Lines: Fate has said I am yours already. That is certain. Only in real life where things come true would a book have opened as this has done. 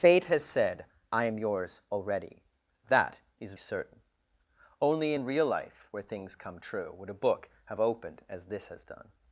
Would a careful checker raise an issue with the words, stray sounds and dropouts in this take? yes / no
no